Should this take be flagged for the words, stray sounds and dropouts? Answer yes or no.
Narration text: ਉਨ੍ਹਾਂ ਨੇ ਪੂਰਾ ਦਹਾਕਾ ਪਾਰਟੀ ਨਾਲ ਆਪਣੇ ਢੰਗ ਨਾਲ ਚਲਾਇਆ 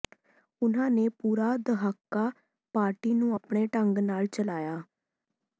yes